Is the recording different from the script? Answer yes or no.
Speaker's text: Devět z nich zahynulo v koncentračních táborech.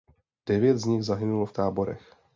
yes